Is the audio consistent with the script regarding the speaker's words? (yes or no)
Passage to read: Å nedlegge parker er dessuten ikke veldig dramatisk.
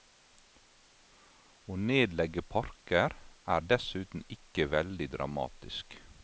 yes